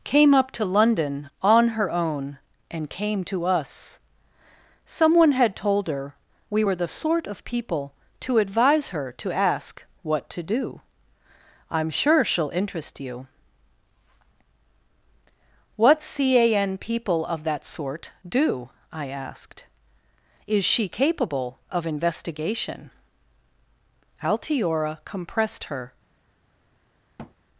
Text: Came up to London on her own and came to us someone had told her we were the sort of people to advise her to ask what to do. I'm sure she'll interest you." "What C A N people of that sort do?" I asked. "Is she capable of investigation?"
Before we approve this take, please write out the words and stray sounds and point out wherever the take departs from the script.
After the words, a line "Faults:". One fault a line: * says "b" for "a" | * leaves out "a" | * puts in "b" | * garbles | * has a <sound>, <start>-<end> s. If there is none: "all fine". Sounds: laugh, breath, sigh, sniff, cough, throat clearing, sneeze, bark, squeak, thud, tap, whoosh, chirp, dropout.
Came up to London on her own and came to us someone had told her we were the sort of people to advise her to ask what to do. I'm sure she'll interest you." "What C A N people of that sort do?" I asked. "Is she capable of investigation?" Altiora compressed her
Faults:
* puts in "Altiora compressed her"
* has a thud, 27.2-27.3 s